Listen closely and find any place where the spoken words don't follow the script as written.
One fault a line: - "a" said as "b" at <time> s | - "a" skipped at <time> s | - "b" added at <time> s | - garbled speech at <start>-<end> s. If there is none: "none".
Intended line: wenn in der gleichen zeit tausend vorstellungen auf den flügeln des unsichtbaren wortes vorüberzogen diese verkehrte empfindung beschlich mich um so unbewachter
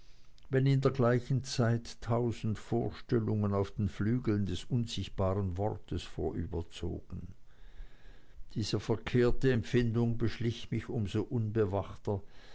none